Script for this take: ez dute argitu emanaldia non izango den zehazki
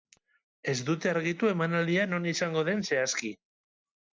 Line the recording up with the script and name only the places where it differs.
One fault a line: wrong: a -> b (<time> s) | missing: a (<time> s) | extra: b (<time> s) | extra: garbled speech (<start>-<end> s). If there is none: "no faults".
no faults